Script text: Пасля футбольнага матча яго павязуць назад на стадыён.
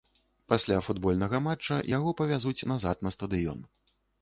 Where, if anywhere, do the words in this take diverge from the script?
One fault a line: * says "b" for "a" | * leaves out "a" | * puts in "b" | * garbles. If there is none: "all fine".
all fine